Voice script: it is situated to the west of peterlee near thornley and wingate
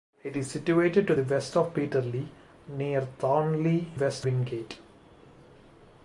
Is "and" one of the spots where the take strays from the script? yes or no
yes